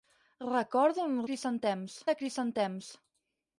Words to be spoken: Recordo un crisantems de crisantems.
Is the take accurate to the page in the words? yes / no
yes